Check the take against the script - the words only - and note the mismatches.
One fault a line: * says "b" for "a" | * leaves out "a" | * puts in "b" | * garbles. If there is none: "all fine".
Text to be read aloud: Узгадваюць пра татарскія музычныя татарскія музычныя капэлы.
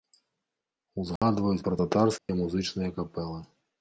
* leaves out "татарскія музычныя"